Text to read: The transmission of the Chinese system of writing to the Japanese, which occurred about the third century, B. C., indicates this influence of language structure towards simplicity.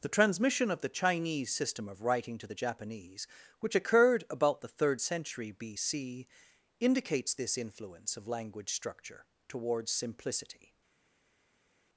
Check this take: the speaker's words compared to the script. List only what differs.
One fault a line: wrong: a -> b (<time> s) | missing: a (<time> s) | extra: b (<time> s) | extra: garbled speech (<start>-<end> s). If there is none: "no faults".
no faults